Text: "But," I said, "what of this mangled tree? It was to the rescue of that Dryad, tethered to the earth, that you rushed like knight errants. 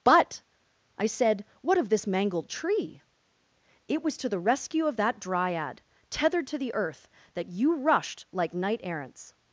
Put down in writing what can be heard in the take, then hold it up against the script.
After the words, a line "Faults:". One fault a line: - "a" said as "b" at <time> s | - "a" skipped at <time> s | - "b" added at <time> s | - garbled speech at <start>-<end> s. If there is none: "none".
"But," I said, "what of this mangled tree? It was to the rescue of that Dryad, tethered to the earth, that you rushed like knight errants.
Faults:
none